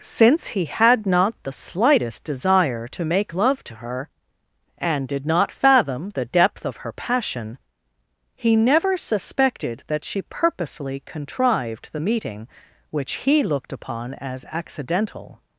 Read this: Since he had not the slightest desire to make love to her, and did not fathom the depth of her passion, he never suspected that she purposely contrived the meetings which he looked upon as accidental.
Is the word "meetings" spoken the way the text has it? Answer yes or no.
no